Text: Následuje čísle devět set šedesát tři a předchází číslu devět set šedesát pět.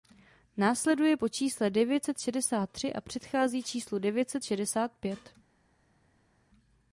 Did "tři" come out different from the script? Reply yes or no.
no